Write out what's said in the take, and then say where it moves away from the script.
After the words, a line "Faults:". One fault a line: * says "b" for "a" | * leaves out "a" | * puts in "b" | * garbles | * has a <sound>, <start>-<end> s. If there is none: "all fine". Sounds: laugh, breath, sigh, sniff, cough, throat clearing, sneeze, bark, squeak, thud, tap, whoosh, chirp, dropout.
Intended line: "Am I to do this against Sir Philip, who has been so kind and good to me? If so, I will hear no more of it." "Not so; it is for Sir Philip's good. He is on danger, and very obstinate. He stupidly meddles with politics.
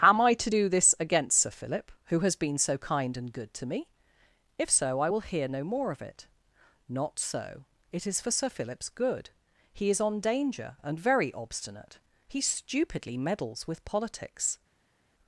"Am I to do this against Sir Philip, who has been so kind and good to me? If so, I will hear no more of it." "Not so; it is for Sir Philip's good. He is on danger, and very obstinate. He stupidly meddles with politics.
Faults:
all fine